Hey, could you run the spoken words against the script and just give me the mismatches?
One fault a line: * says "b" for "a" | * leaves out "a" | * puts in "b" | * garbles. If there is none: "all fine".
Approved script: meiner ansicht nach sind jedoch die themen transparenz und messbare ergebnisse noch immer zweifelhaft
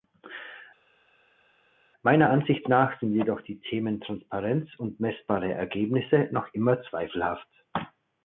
all fine